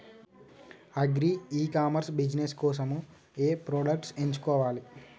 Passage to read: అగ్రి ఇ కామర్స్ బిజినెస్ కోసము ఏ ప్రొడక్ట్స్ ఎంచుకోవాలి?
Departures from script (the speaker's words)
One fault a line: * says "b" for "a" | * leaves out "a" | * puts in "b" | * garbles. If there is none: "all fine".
all fine